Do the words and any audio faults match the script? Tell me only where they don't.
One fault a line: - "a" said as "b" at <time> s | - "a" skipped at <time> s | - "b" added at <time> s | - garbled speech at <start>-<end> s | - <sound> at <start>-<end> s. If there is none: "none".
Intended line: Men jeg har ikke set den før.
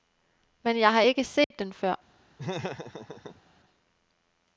- dropout at 1.4-1.5 s
- laugh at 2.4-3.4 s